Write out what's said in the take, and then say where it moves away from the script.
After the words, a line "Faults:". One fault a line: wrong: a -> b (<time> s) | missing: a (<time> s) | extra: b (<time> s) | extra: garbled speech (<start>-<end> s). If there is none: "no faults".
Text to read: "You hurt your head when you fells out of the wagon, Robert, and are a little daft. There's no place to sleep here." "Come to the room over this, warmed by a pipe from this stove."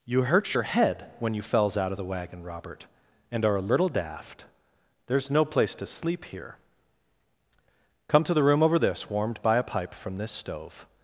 "You hurt your head when you fells out of the wagon, Robert, and are a little daft. There's no place to sleep here." "Come to the room over this, warmed by a pipe from this stove."
Faults:
no faults